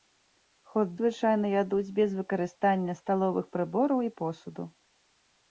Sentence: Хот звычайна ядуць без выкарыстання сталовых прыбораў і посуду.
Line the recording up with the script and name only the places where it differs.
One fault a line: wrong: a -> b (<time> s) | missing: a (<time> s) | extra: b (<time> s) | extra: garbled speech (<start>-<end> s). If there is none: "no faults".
no faults